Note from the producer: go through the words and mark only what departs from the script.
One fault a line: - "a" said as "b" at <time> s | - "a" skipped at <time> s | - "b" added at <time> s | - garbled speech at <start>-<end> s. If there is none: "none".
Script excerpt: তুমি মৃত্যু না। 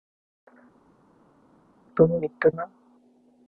none